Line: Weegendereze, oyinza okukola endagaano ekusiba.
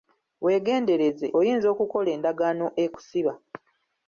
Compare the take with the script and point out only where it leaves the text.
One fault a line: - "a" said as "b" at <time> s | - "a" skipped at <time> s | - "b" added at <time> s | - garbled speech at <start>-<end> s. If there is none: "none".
none